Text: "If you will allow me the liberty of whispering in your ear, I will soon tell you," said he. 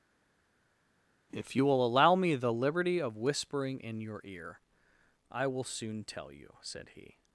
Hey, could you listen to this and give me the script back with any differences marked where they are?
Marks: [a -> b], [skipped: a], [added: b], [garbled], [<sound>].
"If you will allow me the liberty of whispering in your ear, I will soon tell you," said he.